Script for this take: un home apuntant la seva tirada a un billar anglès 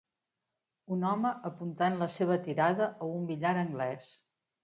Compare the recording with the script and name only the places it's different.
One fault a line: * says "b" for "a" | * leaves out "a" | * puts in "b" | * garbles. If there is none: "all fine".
all fine